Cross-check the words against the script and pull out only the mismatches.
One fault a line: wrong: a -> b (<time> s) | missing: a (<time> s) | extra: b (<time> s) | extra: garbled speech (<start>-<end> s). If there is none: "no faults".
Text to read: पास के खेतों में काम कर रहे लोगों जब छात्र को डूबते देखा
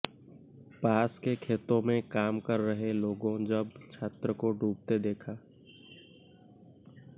no faults